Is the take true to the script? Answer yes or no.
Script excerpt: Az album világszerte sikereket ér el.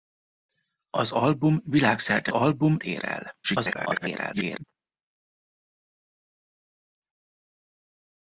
no